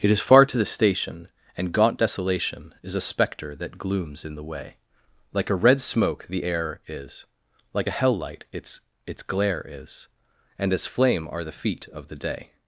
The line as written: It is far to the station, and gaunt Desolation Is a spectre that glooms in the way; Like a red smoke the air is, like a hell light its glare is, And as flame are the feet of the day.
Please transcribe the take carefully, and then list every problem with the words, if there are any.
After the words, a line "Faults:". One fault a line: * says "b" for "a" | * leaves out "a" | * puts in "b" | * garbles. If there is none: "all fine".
It is far to the station, and gaunt Desolation Is a spectre that glooms in the way; Like a red smoke the air is, like a hell light its its glare is, And as flame are the feet of the day.
Faults:
* puts in "its"